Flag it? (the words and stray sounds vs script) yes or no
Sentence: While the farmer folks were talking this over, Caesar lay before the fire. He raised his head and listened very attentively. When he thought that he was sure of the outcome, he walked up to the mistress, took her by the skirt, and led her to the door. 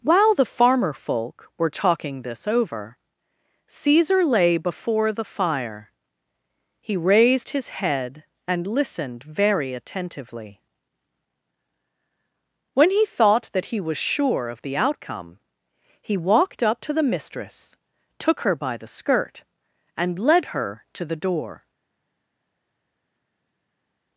yes